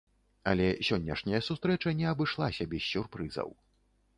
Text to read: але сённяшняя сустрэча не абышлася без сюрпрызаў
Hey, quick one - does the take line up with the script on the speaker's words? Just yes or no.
yes